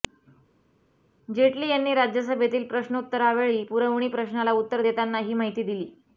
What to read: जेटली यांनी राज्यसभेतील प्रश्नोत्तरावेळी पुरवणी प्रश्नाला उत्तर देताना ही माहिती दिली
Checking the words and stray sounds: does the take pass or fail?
pass